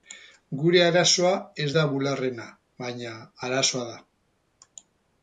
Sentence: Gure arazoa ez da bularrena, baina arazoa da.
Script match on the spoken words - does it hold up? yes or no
yes